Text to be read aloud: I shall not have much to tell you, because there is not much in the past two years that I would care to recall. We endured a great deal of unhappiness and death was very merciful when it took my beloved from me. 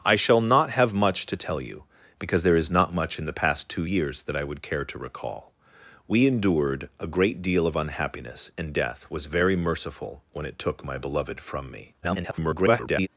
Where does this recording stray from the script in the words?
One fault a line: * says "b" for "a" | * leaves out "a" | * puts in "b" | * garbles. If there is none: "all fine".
* garbles